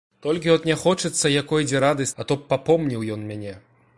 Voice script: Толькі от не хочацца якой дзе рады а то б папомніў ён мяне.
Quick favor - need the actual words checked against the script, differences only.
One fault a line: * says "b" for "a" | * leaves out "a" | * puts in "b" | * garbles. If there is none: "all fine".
all fine